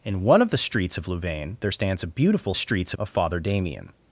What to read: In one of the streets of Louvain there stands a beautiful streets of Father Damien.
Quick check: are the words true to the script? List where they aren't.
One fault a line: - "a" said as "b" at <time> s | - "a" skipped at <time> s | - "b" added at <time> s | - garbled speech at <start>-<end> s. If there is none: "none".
none